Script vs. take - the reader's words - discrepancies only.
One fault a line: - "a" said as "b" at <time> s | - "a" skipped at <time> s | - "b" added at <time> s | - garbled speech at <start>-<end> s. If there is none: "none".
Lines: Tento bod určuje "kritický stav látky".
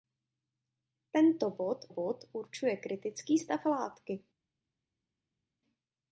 - "bod" added at 1.9 s